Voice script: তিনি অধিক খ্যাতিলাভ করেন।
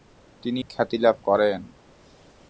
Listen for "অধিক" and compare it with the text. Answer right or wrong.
wrong